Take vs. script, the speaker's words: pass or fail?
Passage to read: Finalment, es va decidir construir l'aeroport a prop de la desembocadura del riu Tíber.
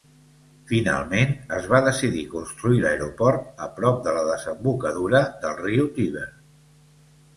pass